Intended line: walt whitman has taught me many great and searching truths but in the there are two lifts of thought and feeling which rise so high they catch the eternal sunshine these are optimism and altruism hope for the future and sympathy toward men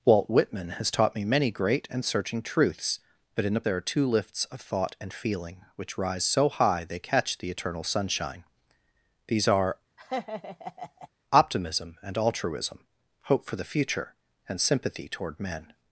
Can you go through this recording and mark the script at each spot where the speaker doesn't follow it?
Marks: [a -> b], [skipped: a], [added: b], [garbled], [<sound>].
walt whitman has taught me many great and searching truths but in the there are two lifts of thought and feeling which rise so high they catch the eternal sunshine these are [laugh] optimism and altruism hope for the future and sympathy toward men